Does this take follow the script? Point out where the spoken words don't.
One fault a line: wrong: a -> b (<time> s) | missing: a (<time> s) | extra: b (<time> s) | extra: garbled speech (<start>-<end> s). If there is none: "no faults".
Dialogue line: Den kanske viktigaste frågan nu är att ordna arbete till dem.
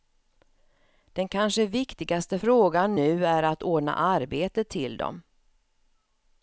no faults